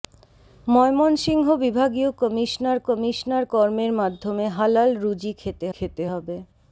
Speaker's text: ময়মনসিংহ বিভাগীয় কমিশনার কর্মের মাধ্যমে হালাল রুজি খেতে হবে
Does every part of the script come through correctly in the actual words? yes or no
no